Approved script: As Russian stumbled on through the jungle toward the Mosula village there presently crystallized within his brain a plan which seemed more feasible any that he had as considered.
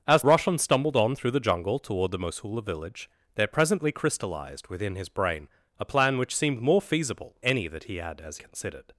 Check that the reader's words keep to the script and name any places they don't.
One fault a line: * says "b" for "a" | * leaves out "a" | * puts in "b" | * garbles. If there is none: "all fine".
all fine